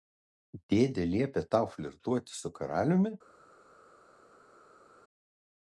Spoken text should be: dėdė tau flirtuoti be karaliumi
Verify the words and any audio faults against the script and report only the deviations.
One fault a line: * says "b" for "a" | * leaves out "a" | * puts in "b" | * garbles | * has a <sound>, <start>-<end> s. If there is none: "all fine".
* puts in "liepė"
* says "su" for "be"